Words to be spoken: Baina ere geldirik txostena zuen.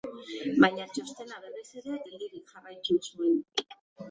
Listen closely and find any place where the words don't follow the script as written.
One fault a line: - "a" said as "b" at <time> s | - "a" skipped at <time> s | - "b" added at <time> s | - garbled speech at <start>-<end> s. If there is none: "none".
- "txostena berriz" added at 0.9 s
- "txostena" said as "jarraitu" at 2.6 s